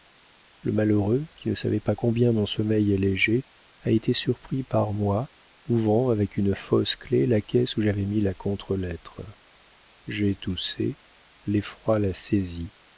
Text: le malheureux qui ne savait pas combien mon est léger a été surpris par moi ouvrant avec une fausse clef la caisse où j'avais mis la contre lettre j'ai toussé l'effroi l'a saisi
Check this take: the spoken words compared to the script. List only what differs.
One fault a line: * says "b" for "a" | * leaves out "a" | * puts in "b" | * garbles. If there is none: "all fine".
* puts in "sommeil"